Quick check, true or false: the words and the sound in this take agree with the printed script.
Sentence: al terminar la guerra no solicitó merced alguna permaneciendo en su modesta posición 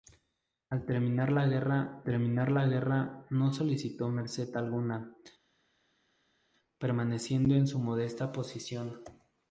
false